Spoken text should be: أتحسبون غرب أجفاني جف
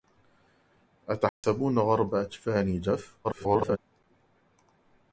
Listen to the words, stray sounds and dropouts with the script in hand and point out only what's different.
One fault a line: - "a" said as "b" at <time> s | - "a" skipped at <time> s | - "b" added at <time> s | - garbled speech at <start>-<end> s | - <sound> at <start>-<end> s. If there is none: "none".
- dropout at 1.3-1.4 s
- garbled speech at 3.2-3.8 s